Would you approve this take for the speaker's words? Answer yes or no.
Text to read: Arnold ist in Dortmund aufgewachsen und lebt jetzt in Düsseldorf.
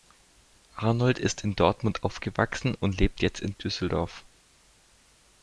yes